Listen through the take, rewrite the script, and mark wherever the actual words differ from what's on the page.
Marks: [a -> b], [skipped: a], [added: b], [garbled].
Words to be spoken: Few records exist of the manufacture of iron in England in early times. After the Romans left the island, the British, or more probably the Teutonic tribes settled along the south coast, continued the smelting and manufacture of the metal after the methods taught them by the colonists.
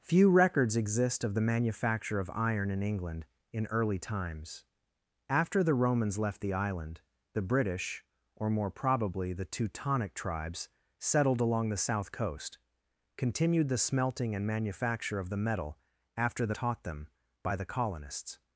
Few records exist of the manufacture of iron in England in early times. After the Romans left the island, the British, or more probably the Teutonic tribes settled along the south coast, continued the smelting and manufacture of the metal after the [skipped: methods] taught them by the colonists.